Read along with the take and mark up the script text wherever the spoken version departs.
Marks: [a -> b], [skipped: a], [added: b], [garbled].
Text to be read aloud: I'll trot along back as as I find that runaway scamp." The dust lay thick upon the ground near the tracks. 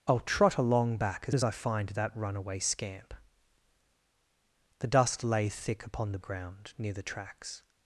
I'll trot along back as as I find that runaway scamp." The dust lay thick upon the ground near the tracks.